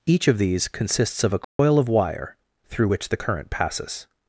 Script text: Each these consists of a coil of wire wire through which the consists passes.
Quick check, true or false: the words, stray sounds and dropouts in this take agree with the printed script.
false